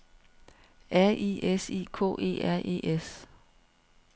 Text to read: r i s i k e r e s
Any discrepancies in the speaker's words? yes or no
no